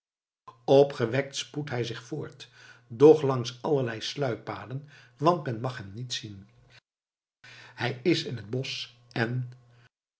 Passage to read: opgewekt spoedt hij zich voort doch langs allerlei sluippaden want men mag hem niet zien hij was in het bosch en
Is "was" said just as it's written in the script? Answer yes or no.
no